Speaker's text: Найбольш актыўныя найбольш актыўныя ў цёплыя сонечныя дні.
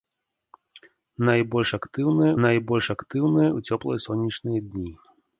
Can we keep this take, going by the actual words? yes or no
yes